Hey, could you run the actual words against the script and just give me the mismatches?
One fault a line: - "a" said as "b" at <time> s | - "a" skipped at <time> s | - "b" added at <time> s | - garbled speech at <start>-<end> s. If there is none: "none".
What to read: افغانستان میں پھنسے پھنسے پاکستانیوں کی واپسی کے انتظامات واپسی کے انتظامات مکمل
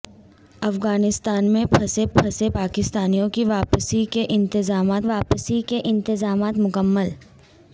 none